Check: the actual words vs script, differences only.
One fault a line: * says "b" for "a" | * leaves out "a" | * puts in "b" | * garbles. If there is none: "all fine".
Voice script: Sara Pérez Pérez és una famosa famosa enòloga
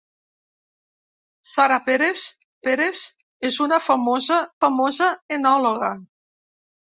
all fine